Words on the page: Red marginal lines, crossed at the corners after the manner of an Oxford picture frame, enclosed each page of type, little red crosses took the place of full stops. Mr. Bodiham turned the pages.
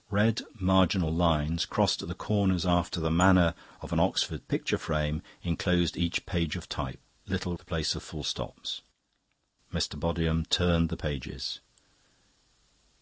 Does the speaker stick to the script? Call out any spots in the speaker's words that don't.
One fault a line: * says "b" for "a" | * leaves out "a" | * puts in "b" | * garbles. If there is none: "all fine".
* leaves out "red crosses took"